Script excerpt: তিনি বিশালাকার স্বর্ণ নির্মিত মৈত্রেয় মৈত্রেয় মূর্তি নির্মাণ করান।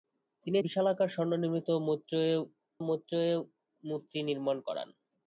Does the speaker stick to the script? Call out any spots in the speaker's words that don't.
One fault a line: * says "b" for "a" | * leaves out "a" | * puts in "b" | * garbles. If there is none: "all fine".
all fine